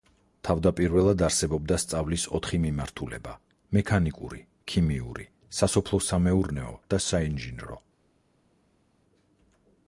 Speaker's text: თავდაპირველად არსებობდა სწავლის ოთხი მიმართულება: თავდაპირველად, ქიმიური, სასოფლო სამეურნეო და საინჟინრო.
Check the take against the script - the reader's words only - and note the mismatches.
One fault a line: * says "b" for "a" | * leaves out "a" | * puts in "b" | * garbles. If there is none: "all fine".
* says "მექანიკური" for "თავდაპირველად"